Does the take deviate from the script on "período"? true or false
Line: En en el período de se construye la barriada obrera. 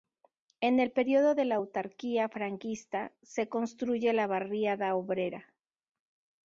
false